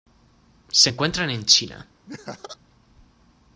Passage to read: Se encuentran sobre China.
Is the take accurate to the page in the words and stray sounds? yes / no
no